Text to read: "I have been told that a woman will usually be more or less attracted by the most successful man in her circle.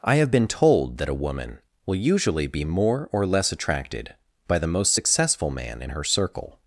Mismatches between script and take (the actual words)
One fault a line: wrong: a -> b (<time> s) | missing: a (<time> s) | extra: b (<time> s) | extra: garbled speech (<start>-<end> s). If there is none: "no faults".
no faults